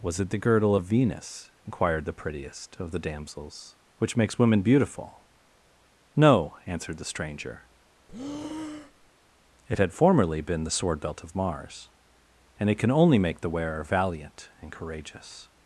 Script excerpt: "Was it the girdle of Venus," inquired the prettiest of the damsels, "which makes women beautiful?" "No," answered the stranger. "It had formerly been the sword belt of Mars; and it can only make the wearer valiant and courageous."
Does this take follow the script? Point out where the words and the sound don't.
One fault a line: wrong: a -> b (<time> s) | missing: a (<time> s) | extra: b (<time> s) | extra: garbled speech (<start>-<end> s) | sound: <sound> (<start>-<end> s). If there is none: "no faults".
sound: breath (8.1-9.1 s)